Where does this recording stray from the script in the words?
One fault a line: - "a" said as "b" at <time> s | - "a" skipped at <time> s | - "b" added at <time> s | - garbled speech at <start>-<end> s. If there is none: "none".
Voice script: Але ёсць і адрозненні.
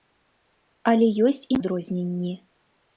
none